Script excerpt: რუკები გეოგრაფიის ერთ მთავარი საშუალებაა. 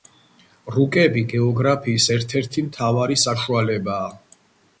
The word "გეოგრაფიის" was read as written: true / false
true